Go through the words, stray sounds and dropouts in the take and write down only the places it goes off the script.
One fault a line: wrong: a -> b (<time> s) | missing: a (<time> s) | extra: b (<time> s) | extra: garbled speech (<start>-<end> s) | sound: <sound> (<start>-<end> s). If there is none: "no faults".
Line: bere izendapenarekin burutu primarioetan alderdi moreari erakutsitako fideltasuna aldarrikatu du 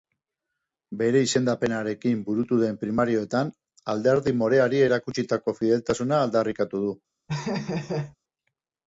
extra: den (2.6 s)
sound: laugh (7.3-8.2 s)